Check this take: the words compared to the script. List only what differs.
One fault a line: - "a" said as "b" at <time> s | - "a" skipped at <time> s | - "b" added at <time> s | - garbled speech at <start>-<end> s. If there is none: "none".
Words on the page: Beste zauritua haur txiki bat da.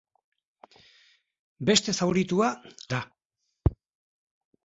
- "haur txiki bat" skipped at 2.5 s